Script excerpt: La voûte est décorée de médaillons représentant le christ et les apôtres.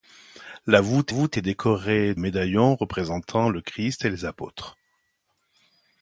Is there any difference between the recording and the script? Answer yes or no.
yes